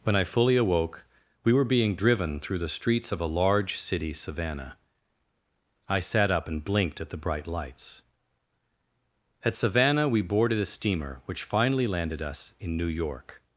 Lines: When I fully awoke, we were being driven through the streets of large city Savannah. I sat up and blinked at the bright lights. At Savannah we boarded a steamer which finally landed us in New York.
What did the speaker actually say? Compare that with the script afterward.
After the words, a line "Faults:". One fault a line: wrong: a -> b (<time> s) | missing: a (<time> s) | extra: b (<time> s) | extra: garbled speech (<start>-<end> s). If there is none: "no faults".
When I fully awoke, we were being driven through the streets of a large city Savannah. I sat up and blinked at the bright lights. At Savannah we boarded a steamer which finally landed us in New York.
Faults:
extra: a (3.2 s)